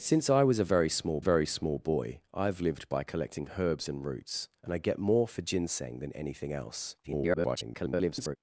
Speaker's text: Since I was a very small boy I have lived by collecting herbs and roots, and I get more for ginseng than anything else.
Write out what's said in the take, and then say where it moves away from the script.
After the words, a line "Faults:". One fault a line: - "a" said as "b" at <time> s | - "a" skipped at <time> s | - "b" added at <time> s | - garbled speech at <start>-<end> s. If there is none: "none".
Since I was a very small very small boy I have lived by collecting herbs and roots, and I get more for ginseng than anything else. [garbled]
Faults:
- "very small" added at 1.2 s
- garbled speech at 7.0-8.4 s